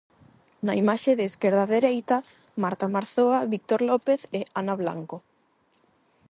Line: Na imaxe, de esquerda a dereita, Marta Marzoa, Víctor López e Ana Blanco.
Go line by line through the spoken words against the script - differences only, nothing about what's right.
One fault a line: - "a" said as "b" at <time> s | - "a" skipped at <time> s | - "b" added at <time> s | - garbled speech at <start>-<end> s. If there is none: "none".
none